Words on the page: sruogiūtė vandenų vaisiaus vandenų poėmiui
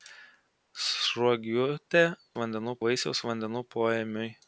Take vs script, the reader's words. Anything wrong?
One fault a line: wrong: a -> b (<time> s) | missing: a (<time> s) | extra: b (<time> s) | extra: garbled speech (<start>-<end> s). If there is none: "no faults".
no faults